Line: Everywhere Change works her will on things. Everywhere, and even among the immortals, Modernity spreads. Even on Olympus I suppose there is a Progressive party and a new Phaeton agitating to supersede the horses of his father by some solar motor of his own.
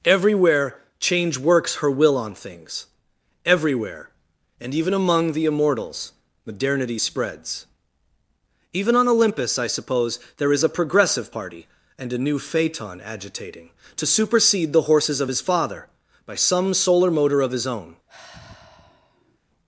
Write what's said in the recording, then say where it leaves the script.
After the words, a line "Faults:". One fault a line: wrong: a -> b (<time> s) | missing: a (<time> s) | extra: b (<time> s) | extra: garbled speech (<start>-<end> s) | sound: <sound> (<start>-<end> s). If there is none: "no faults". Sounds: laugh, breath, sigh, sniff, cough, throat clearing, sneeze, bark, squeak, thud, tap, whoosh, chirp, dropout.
Everywhere Change works her will on things. Everywhere, and even among the immortals, Modernity spreads. Even on Olympus I suppose there is a Progressive party and a new Phaeton agitating to supersede the horses of his father by some solar motor of his own.
Faults:
sound: sigh (18.1-19.4 s)